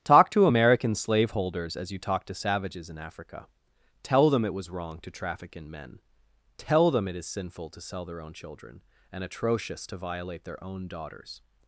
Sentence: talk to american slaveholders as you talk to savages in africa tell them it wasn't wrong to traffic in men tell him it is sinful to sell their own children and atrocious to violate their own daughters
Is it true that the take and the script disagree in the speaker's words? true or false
true